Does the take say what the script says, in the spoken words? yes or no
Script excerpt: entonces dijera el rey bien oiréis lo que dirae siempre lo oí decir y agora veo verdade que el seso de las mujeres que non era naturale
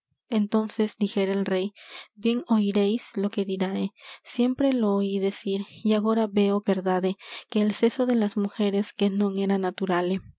yes